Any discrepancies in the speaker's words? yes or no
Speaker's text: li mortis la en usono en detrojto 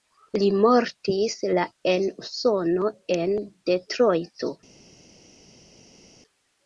no